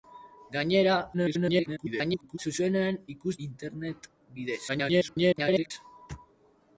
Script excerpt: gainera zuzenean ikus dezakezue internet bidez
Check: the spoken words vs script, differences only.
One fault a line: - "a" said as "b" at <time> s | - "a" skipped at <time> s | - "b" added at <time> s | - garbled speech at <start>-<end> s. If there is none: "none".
- garbled speech at 1.1-2.4 s
- "dezakezue" skipped at 3.3 s
- garbled speech at 4.7-5.7 s